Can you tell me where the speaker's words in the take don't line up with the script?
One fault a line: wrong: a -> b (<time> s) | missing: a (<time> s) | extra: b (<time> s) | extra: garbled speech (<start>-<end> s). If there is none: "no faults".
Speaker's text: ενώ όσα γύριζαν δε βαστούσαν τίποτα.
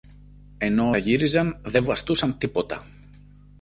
missing: όσα (0.9 s)